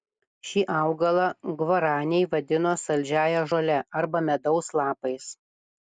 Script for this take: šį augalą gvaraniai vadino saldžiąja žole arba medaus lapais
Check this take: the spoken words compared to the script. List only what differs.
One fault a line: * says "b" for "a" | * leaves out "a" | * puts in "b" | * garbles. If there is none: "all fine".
all fine